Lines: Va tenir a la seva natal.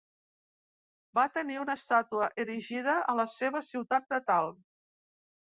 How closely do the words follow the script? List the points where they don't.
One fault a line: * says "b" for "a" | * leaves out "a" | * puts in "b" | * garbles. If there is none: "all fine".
* puts in "una estàtua erigida"
* puts in "ciutat"